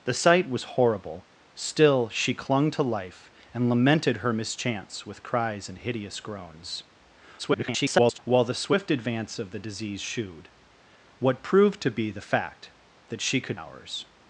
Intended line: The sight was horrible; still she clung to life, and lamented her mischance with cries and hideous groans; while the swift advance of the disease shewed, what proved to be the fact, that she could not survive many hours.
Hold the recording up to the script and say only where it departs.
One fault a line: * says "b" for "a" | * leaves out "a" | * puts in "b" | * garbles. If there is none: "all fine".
* garbles
* leaves out "not survive many"